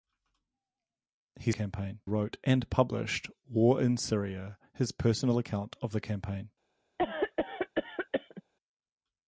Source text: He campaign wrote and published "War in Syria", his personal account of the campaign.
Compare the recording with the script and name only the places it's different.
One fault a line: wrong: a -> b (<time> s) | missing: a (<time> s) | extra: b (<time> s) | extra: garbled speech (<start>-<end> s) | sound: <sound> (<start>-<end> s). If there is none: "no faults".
sound: cough (7.0-8.4 s)